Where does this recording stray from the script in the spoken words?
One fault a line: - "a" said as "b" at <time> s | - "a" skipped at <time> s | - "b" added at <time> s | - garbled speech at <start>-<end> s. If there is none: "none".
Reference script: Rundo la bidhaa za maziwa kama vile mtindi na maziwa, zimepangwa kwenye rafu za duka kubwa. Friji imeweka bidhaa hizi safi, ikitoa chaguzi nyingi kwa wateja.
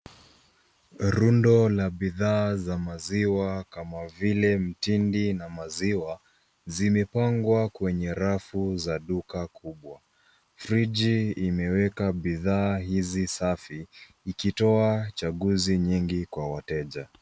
none